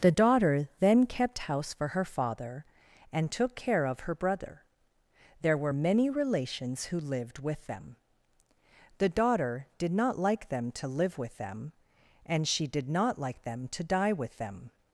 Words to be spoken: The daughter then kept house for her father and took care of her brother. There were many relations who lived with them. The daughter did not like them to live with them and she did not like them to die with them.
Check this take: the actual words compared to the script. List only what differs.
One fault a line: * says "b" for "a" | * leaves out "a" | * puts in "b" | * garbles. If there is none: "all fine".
all fine